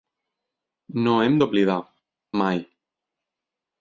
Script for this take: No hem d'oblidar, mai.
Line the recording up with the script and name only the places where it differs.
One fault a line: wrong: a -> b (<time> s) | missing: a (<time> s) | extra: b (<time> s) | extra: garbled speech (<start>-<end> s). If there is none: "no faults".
no faults